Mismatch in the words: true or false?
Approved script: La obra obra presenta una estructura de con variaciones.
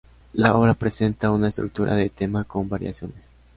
true